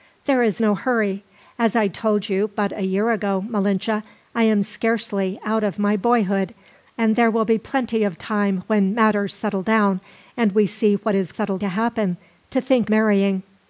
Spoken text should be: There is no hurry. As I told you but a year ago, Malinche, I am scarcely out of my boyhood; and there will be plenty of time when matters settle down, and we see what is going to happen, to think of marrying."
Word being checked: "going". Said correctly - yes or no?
no